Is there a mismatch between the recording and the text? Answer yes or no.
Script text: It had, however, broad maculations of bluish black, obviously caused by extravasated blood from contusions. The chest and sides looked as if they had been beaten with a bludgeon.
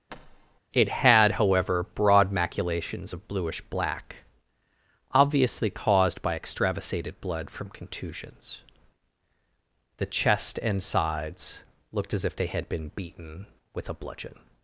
no